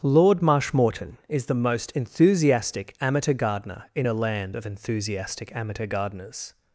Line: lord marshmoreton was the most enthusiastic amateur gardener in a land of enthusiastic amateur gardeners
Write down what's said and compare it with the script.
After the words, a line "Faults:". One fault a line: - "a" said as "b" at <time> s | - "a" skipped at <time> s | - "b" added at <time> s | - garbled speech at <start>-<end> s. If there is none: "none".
lord marshmoreton is the most enthusiastic amateur gardener in a land of enthusiastic amateur gardeners
Faults:
- "was" said as "is" at 1.3 s